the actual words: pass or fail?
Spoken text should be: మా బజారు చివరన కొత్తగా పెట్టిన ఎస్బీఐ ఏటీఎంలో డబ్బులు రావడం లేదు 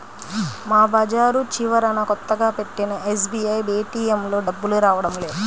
pass